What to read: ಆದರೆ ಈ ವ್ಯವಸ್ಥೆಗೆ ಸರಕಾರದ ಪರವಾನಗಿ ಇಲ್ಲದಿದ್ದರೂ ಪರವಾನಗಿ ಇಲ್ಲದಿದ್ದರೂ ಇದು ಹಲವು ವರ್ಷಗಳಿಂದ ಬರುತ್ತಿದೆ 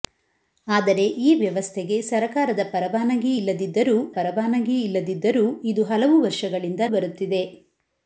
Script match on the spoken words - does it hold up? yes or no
yes